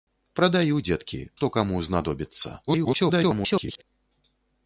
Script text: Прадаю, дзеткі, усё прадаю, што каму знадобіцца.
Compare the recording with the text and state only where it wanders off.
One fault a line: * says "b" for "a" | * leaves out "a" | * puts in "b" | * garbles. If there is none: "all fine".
* leaves out "усё прадаю"
* garbles